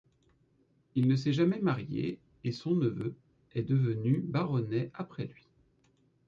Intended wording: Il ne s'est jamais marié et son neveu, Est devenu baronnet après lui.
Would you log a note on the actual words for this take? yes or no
no